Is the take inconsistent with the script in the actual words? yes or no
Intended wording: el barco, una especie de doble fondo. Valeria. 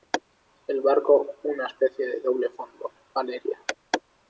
no